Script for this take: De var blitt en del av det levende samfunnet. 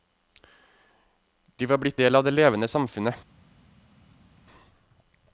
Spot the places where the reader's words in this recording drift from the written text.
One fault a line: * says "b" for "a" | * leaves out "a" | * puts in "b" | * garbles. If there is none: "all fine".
* leaves out "en"